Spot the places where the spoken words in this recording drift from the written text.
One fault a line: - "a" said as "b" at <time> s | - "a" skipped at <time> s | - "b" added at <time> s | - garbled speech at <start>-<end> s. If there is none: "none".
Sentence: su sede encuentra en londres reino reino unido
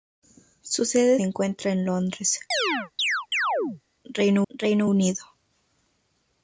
none